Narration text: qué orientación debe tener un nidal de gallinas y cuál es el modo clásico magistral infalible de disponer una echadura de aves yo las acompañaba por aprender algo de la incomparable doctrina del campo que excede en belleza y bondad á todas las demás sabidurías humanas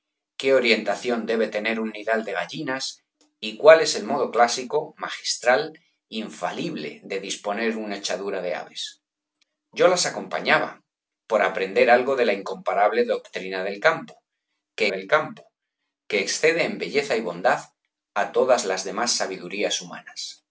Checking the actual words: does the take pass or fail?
fail